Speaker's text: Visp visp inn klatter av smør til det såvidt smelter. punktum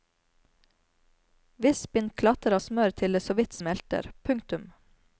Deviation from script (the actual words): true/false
true